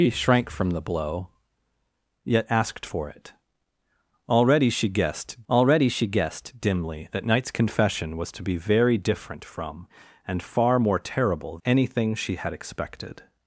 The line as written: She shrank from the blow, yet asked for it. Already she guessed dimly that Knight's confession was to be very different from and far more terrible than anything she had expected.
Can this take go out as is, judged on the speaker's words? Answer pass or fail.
fail